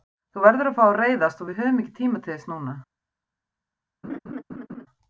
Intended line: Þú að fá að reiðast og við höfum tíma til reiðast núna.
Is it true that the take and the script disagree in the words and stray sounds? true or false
true